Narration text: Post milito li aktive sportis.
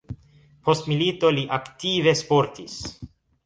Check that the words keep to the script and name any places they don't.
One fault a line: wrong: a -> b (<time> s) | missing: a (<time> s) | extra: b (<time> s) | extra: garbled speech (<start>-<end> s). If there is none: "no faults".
no faults